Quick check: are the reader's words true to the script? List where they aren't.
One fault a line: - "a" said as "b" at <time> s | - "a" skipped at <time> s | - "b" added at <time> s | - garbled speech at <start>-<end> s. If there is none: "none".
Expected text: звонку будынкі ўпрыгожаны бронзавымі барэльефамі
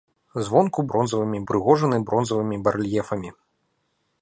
- "будынкі" said as "бронзавымі" at 0.9 s